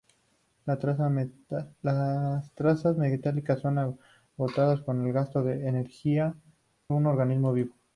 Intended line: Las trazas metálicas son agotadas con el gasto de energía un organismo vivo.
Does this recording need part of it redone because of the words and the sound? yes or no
no